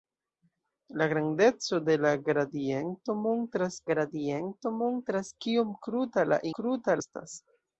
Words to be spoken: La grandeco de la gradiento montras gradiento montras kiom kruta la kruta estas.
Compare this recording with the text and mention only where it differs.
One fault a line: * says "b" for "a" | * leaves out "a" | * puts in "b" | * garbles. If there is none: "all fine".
all fine